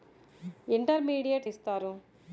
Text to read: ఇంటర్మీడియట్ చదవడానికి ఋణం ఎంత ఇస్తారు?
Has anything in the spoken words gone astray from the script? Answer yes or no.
yes